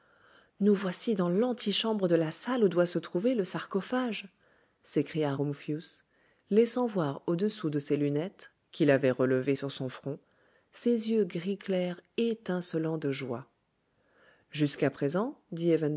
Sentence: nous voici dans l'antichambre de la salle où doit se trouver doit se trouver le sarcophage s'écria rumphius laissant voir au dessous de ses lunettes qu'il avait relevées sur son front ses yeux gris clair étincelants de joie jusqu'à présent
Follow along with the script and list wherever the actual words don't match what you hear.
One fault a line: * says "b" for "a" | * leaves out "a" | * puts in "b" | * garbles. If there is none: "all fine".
* leaves out "doit se trouver"